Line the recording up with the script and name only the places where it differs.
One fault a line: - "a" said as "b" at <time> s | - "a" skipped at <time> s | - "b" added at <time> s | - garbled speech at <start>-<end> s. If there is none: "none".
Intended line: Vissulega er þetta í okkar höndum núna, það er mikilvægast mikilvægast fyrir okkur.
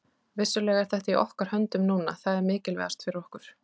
- "mikilvægast" skipped at 3.1 s